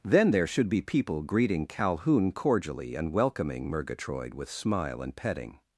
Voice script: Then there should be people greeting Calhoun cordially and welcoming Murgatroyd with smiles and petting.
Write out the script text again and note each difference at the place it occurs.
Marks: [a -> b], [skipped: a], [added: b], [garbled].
Then there should be people greeting Calhoun cordially and welcoming Murgatroyd with [smiles -> smile] and petting.